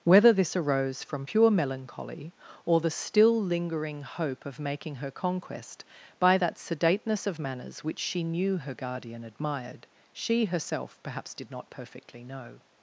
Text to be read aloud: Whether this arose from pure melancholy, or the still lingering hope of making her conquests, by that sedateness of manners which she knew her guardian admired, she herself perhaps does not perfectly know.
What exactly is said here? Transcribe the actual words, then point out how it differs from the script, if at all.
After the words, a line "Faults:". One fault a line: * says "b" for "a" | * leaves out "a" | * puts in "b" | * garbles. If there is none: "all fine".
Whether this arose from pure melancholy, or the still lingering hope of making her conquest, by that sedateness of manners which she knew her guardian admired, she herself perhaps did not perfectly know.
Faults:
* says "conquest" for "conquests"
* says "did" for "does"